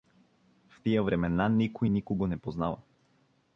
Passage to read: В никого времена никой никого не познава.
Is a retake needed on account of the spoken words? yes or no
yes